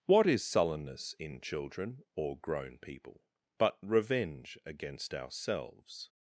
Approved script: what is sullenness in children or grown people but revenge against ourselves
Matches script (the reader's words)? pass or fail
pass